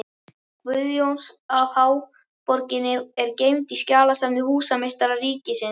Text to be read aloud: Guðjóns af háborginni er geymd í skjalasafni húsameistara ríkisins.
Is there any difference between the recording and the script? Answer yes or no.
no